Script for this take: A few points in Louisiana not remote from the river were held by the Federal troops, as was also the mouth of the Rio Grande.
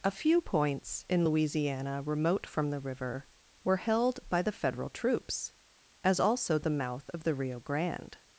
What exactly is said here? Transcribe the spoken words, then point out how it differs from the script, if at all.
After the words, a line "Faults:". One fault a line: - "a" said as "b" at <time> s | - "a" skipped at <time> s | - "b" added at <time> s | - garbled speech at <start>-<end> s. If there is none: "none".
A few points in Louisiana remote from the river were held by the Federal troops, as also the mouth of the Rio Grande.
Faults:
- "not" skipped at 2.0 s
- "was" skipped at 6.2 s